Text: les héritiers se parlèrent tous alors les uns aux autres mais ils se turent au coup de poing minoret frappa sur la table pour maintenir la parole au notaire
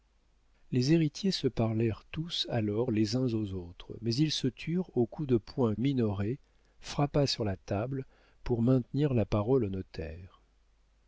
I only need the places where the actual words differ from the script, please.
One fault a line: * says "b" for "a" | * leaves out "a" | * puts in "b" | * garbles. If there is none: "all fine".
all fine